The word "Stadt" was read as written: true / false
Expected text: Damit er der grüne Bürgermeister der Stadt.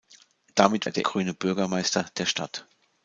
true